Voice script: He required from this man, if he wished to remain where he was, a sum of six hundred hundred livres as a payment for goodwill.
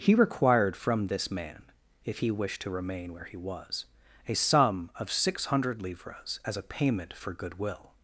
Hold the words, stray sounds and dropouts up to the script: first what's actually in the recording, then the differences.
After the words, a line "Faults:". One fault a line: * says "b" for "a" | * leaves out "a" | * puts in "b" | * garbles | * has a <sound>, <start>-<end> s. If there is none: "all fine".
He required from this man, if he wished to remain where he was, a sum of six hundred livres as a payment for goodwill.
Faults:
* leaves out "hundred"